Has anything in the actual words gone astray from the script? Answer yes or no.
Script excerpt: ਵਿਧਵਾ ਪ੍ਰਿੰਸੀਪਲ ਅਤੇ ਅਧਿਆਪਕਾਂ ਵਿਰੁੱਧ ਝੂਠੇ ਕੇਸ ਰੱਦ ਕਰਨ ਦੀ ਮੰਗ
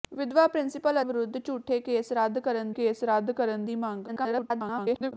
yes